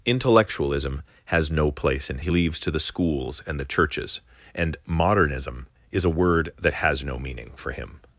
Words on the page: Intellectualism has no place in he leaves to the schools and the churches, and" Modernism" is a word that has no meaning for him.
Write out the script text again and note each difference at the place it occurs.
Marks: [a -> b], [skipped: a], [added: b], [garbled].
Intellectualism has no place in he leaves to the schools and the churches, and" Modernism" is a word that has no meaning for him.